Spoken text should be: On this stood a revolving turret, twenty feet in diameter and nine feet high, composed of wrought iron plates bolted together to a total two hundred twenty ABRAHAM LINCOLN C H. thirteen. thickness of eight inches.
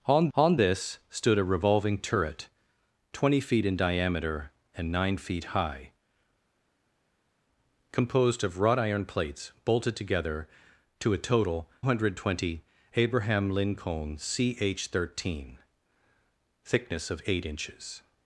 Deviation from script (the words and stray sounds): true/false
true